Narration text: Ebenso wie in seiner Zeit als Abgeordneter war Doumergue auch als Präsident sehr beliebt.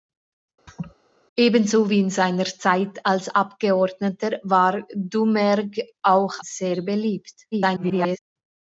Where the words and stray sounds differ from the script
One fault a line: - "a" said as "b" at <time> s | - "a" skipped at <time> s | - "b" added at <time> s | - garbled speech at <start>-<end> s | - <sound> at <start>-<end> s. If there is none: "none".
- laugh at 0.7-1.0 s
- "als Präsident" skipped at 6.3 s
- garbled speech at 7.5-8.2 s